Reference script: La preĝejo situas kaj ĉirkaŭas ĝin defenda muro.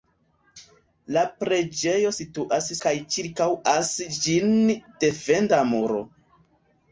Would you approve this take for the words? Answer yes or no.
yes